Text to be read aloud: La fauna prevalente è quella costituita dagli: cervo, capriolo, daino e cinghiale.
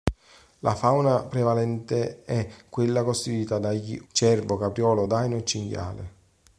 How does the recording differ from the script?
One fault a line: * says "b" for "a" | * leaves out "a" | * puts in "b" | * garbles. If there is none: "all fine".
all fine